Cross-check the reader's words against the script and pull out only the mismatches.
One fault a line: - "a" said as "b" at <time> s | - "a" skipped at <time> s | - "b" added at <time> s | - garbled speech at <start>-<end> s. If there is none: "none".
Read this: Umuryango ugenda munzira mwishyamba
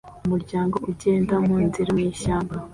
none